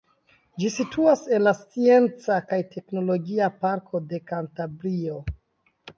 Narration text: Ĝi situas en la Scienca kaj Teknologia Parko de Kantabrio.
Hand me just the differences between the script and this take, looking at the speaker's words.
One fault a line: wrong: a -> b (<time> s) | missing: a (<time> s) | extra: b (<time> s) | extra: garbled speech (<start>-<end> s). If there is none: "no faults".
no faults